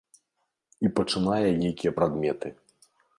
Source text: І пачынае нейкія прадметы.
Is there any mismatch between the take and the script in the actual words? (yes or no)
no